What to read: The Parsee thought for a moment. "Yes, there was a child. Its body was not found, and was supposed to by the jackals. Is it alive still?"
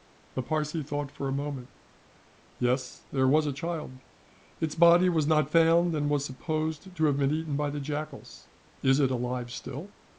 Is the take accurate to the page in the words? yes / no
no